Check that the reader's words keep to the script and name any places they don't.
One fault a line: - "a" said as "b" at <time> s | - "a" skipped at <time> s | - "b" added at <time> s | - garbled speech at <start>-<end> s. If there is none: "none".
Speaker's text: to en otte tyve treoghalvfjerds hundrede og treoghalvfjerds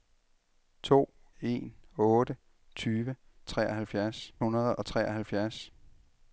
none